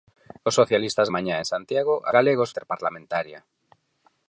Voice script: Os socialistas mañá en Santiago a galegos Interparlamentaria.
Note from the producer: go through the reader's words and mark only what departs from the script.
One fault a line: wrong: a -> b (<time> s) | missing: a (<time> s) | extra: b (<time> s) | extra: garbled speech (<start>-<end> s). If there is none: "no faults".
no faults